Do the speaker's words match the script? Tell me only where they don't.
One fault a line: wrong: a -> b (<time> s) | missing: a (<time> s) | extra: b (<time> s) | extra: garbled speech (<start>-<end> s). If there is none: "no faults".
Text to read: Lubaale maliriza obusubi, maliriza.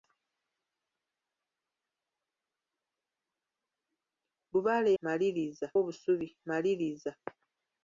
no faults